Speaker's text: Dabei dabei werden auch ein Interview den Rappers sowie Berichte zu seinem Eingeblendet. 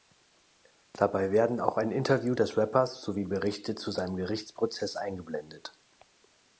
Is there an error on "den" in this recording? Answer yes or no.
yes